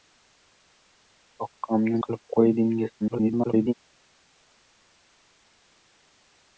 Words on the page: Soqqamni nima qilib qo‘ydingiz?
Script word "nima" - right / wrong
wrong